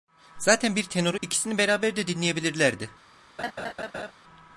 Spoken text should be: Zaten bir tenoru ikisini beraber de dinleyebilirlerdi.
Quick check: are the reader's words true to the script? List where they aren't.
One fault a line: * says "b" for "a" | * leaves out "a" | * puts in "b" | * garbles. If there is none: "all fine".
all fine